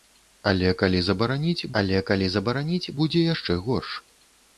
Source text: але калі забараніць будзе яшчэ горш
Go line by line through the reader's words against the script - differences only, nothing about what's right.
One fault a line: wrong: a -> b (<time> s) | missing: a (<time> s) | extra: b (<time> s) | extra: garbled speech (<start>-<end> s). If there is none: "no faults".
extra: але калі забараніць (1.8 s)